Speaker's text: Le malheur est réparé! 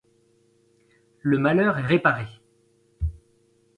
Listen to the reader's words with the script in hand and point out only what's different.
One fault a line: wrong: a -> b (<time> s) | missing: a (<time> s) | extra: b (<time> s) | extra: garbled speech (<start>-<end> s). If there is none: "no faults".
no faults